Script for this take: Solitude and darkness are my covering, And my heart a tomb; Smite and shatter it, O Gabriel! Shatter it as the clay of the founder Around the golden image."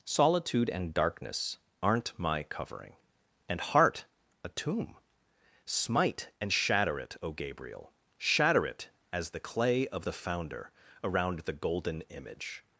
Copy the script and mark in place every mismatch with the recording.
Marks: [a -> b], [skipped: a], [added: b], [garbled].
Solitude and darkness [are -> aren't] my covering, And [skipped: my] heart a tomb; Smite and shatter it, O Gabriel! Shatter it as the clay of the founder Around the golden image."